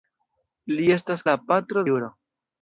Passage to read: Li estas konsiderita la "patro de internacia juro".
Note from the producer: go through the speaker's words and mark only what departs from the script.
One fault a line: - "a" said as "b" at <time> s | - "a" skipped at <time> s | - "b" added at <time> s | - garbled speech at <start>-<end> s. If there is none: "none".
- "konsiderita" skipped at 1.3 s
- "de internacia" skipped at 1.9 s